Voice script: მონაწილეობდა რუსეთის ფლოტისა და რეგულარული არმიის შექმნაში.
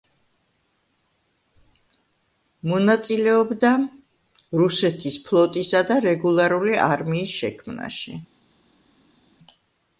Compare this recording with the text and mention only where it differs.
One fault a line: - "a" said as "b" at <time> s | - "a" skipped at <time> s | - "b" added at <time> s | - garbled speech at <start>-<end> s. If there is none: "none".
none